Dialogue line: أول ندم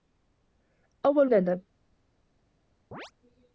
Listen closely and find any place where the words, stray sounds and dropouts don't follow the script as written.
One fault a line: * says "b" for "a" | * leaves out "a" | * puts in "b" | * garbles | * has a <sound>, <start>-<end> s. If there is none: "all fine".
* has a chirp, 2.9-3.1 s